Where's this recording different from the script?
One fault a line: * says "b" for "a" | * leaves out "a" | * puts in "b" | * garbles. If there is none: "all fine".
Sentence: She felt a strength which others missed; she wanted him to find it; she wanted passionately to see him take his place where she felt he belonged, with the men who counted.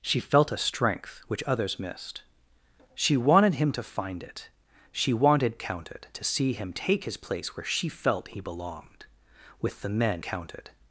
* says "counted" for "passionately"
* leaves out "who"